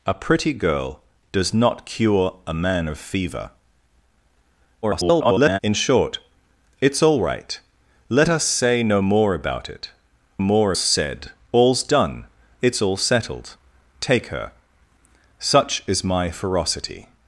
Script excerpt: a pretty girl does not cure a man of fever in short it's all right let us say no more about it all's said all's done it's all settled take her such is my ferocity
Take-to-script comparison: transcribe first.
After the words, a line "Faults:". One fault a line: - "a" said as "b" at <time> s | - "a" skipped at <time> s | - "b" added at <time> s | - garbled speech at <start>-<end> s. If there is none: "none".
a pretty girl does not cure a man of fever [garbled] in short it's all right let us say no more about it more said all's done it's all settled take her such is my ferocity
Faults:
- garbled speech at 4.8-5.6 s
- "all's" said as "more" at 10.4 s